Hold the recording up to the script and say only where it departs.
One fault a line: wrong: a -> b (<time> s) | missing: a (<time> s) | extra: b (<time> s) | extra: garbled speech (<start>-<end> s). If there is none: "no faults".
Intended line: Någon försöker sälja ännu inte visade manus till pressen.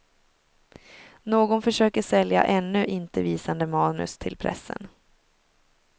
no faults